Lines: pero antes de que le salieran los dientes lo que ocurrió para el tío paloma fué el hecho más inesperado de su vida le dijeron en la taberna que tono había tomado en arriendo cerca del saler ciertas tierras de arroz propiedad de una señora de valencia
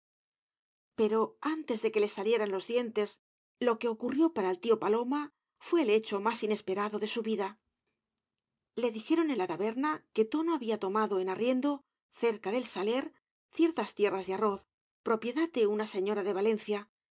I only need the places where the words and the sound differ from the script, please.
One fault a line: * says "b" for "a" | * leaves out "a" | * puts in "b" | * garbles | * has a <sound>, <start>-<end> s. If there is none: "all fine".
all fine